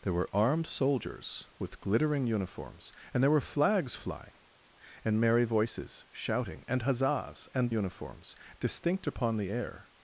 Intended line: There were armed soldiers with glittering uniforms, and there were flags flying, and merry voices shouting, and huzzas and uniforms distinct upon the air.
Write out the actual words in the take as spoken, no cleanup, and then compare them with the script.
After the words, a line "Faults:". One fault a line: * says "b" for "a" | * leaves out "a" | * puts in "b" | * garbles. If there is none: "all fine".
There were armed soldiers with glittering uniforms, and there were flags flying, and merry voices shouting, and huzzas and uniforms distinct upon the air.
Faults:
all fine